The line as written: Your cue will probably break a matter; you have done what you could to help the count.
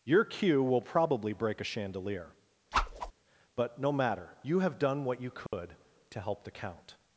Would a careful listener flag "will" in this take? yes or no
no